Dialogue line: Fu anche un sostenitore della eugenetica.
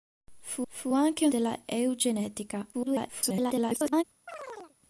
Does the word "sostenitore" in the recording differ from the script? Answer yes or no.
yes